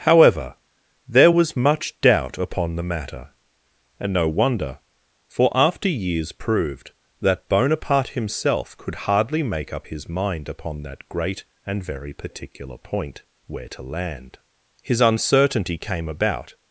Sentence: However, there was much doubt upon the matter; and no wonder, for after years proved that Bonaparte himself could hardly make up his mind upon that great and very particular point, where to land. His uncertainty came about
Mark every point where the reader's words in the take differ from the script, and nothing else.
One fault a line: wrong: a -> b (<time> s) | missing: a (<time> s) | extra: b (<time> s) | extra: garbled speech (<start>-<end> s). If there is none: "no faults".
no faults